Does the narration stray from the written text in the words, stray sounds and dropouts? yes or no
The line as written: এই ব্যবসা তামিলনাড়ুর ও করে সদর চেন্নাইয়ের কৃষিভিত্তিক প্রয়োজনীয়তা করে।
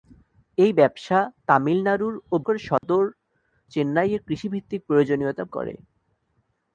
yes